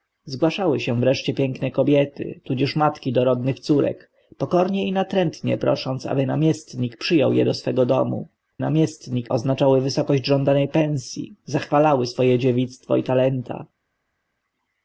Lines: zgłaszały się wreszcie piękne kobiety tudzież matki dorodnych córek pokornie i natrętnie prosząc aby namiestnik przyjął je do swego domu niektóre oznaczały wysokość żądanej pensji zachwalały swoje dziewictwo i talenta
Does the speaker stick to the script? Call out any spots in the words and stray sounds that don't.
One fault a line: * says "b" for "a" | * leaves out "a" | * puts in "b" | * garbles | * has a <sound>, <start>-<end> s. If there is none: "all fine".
* says "namiestnik" for "niektóre"